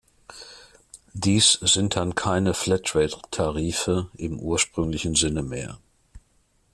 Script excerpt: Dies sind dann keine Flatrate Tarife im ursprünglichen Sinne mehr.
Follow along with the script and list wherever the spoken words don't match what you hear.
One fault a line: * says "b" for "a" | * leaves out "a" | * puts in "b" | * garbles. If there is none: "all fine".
all fine